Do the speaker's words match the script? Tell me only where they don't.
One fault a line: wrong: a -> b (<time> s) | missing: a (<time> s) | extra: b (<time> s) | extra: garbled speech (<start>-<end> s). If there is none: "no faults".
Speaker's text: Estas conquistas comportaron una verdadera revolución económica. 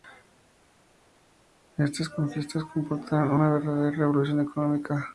no faults